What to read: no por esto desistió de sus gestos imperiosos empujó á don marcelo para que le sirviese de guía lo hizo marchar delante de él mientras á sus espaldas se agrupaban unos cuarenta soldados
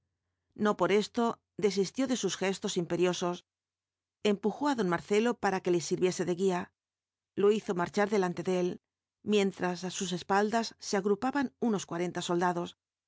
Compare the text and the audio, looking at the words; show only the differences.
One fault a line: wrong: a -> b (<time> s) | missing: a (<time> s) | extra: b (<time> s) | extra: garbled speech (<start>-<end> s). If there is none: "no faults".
no faults